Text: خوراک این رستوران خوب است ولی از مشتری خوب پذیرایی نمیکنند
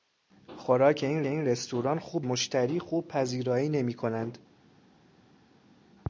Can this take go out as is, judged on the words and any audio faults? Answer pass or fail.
fail